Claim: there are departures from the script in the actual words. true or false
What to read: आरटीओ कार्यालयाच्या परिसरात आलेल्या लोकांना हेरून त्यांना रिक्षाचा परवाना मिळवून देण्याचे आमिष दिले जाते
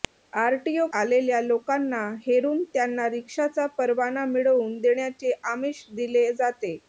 true